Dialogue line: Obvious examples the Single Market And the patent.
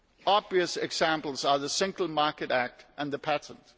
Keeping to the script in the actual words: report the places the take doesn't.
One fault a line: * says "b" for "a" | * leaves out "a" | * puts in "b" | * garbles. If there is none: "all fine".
* puts in "are"
* puts in "Act"